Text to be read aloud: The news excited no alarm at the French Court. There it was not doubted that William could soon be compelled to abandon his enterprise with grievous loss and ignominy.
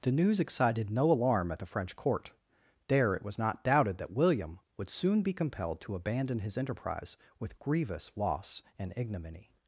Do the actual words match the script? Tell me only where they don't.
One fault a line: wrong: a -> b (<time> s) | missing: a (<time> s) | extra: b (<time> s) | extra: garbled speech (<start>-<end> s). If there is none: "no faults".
wrong: could -> would (4.8 s)